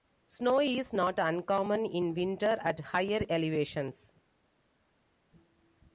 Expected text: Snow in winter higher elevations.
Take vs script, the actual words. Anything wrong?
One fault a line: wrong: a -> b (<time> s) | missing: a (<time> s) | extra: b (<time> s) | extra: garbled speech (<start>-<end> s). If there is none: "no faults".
extra: is not uncommon (0.6 s)
extra: at (2.6 s)